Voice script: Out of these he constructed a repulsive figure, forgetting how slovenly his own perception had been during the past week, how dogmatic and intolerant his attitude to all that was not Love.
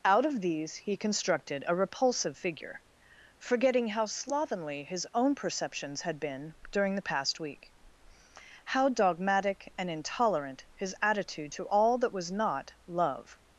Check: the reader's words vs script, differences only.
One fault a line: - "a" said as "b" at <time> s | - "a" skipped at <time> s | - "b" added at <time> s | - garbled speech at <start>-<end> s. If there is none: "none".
- "perception" said as "perceptions" at 5.3 s